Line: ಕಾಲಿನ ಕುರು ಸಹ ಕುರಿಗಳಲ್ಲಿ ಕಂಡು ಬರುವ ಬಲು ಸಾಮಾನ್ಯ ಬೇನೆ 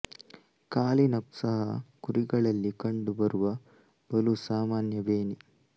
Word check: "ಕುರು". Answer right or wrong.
wrong